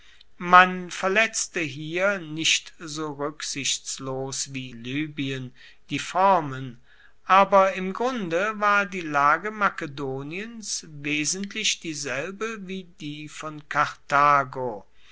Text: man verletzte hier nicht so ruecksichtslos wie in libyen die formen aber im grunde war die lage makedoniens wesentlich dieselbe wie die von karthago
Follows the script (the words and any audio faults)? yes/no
no